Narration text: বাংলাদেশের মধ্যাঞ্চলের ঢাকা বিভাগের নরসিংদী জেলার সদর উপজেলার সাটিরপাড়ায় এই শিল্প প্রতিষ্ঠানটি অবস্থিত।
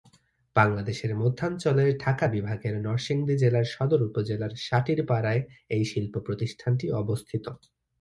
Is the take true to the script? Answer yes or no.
yes